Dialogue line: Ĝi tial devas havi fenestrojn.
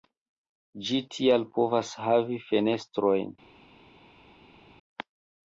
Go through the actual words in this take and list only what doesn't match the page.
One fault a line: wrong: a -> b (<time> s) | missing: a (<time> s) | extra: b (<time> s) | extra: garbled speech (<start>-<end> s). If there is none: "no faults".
wrong: devas -> povas (1.6 s)